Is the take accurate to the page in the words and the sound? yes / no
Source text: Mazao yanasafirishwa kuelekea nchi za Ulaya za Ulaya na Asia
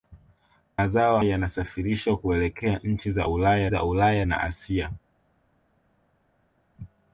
yes